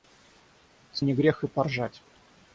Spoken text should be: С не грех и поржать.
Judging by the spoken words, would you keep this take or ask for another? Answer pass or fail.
pass